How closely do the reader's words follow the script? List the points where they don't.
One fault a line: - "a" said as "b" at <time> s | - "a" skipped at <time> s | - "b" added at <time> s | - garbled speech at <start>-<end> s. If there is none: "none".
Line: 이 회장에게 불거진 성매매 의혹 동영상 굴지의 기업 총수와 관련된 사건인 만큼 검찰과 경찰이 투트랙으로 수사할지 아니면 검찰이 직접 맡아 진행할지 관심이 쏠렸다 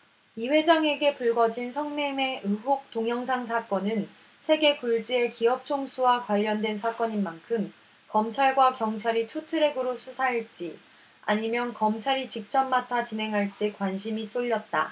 - "사건은 세계" added at 3.5 s